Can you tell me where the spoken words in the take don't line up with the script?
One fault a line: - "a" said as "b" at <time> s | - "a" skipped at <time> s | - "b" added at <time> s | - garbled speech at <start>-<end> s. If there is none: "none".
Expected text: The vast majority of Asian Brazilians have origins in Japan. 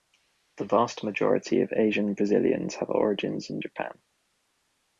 none